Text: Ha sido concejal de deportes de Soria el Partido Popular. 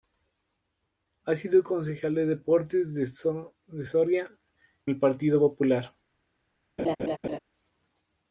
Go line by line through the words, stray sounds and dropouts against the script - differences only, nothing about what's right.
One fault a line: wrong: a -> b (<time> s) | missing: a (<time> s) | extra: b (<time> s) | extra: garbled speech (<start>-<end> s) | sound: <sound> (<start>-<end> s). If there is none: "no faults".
sound: laugh (6.8-7.4 s)